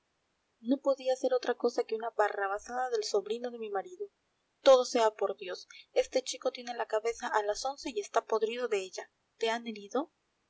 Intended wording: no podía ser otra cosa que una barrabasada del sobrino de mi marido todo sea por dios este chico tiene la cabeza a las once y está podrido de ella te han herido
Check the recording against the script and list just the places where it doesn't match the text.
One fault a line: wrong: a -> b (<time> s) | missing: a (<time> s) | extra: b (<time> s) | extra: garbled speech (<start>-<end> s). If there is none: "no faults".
no faults